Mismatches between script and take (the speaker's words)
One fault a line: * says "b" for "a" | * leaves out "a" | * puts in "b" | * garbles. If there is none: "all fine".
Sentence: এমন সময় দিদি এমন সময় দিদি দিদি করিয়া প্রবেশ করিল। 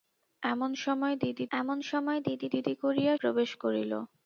all fine